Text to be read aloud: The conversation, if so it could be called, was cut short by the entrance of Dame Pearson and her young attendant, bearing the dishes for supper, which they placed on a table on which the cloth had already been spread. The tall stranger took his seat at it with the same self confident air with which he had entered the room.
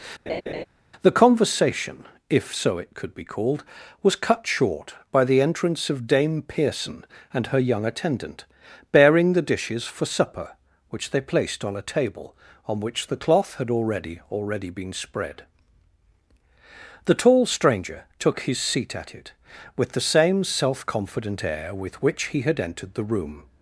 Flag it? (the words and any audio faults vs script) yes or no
yes